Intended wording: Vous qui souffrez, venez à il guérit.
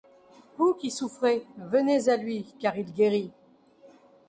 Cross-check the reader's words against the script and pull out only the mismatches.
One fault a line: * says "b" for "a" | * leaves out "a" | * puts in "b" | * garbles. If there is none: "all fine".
* puts in "lui car"